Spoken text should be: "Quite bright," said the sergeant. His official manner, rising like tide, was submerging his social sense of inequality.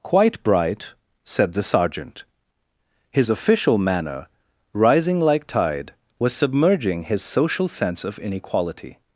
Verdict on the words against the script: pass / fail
pass